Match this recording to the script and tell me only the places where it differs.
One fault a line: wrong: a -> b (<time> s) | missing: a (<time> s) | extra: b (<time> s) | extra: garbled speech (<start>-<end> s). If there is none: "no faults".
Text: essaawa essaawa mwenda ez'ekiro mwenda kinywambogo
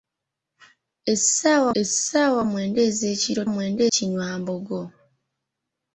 no faults